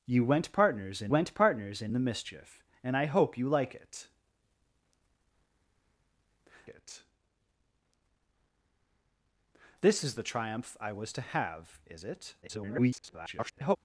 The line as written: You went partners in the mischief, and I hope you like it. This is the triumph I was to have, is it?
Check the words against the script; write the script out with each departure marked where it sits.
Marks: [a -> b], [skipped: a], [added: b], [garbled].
You went partners in [added: went partners in] the mischief, and I hope you like it. [added: it] This is the triumph I was to have, is it? [garbled]